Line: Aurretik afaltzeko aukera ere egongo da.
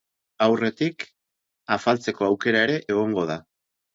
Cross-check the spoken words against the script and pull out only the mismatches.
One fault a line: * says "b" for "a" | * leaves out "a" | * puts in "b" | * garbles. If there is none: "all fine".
all fine